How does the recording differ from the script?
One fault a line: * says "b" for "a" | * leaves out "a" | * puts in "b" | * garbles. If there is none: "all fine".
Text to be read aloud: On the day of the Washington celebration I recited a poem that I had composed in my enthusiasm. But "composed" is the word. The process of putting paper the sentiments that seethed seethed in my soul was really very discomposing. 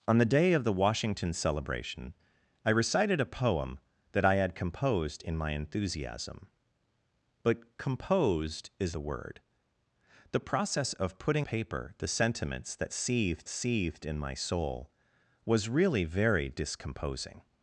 all fine